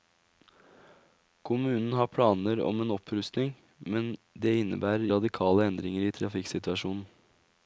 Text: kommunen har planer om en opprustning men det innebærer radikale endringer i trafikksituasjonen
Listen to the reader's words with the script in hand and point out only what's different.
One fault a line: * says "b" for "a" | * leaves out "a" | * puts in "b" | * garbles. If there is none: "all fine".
all fine